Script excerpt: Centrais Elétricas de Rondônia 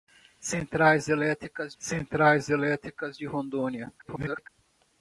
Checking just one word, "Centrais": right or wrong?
right